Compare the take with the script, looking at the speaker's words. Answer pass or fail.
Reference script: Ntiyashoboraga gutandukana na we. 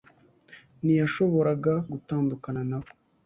pass